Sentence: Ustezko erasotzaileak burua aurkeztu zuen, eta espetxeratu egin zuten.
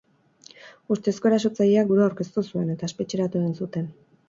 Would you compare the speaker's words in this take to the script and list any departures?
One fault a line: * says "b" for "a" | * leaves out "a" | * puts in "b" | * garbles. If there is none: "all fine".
all fine